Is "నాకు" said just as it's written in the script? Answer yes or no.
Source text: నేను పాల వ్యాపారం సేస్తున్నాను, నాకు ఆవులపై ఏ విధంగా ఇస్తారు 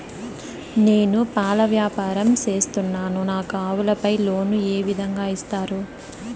yes